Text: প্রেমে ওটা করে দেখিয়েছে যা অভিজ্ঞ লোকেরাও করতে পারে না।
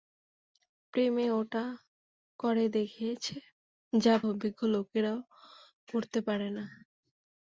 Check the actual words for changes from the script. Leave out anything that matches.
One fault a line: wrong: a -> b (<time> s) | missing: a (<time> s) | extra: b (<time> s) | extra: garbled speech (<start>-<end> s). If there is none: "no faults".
no faults